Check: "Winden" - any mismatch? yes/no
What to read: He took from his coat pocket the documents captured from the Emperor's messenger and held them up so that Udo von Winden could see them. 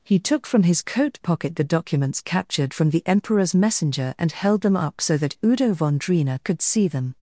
yes